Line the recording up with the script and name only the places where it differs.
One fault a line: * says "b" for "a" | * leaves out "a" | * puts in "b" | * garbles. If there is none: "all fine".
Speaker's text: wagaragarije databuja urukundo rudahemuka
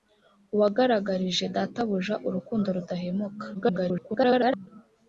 * garbles